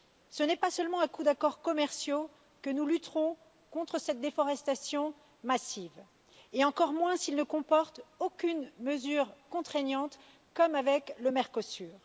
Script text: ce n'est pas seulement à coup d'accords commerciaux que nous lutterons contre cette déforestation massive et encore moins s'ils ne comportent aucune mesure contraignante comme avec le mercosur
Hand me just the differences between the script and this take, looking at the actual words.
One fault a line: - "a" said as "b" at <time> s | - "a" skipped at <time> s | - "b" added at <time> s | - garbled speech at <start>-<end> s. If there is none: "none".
none